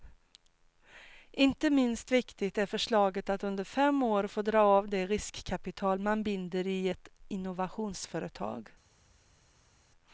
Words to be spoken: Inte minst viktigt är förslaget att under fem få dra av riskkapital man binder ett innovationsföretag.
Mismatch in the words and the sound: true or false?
true